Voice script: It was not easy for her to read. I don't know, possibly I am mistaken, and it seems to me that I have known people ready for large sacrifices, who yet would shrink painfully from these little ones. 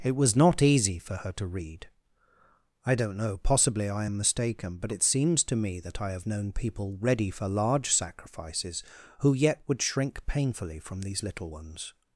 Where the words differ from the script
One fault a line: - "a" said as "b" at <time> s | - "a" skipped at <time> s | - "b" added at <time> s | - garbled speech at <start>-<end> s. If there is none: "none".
- "and" said as "but" at 4.8 s